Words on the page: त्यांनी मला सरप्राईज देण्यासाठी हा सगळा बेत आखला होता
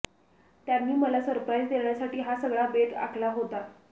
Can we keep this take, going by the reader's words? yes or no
yes